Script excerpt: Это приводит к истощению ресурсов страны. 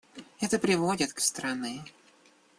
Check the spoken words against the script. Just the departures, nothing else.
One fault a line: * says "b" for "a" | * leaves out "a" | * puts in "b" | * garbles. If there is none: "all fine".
* leaves out "истощению ресурсов"